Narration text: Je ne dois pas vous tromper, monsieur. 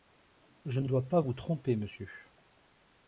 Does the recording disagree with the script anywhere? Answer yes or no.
no